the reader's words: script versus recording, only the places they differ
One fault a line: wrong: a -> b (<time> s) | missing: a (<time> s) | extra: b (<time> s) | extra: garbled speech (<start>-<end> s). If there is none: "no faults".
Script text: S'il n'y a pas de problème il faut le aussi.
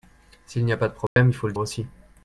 no faults